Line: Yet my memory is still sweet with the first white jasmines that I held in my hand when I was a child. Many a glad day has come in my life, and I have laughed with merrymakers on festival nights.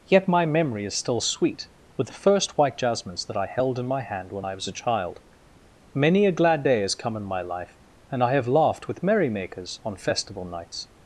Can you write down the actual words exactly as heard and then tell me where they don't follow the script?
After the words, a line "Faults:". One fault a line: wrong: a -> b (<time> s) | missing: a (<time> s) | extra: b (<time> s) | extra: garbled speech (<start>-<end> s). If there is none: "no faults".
Yet my memory is still sweet with the first white jasmines that I held in my hand when I was a child. Many a glad day has come in my life, and I have laughed with merrymakers on festival nights.
Faults:
no faults